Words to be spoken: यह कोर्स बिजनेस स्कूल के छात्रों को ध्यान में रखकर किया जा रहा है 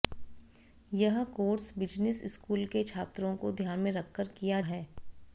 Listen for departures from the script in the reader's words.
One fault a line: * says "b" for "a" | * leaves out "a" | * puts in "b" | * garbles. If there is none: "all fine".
* leaves out "जा रहा"